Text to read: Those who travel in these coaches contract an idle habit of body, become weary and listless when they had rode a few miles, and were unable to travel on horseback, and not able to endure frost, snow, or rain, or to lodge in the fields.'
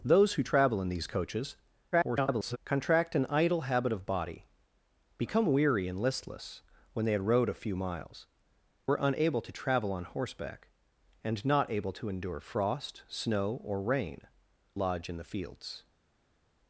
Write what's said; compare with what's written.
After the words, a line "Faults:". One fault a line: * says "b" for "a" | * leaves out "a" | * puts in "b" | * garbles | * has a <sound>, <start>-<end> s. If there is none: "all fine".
Those who travel in these coaches [garbled] contract an idle habit of body, become weary and listless when they had rode a few miles, were unable to travel on horseback, and not able to endure frost, snow, or rain, lodge in the fields.'
Faults:
* garbles
* leaves out "and"
* leaves out "or to"